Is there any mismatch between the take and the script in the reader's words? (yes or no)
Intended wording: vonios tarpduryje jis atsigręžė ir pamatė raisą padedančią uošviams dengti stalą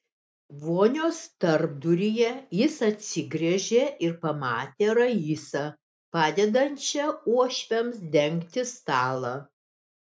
no